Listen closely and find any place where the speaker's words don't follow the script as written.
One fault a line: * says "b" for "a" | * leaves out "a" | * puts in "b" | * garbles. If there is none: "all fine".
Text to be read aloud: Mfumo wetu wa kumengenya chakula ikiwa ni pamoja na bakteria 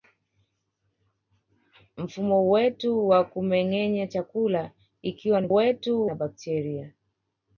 * says "wetu" for "pamoja"